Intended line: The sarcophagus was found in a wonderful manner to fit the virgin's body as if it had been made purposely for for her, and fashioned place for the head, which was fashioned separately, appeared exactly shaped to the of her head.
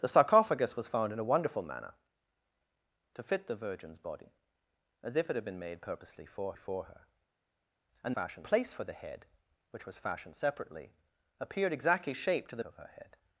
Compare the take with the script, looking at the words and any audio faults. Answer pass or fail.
pass